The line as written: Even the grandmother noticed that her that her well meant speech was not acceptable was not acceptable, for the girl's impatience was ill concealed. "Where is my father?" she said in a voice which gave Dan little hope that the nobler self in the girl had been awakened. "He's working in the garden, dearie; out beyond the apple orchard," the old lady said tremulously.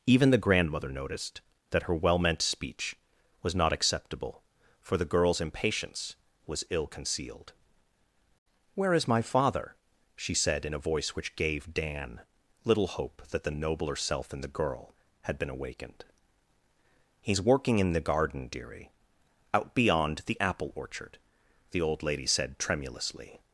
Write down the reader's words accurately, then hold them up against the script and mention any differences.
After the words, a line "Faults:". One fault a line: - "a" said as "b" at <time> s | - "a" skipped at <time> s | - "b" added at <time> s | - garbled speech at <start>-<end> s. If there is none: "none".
Even the grandmother noticed that her well meant speech was not acceptable, for the girl's impatience was ill concealed. "Where is my father?" she said in a voice which gave Dan little hope that the nobler self in the girl had been awakened. "He's working in the garden, dearie; out beyond the apple orchard," the old lady said tremulously.
Faults:
- "that her" skipped at 1.9 s
- "was not acceptable" skipped at 4.4 s